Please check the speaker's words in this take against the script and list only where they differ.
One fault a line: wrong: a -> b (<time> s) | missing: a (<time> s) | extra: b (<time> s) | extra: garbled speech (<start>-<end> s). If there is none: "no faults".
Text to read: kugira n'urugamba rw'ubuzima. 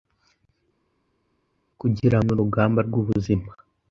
no faults